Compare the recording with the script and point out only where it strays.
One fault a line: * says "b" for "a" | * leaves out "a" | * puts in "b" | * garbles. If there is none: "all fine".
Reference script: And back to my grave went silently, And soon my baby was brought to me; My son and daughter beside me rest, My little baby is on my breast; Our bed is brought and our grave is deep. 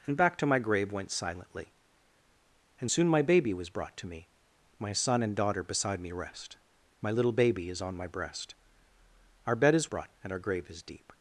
all fine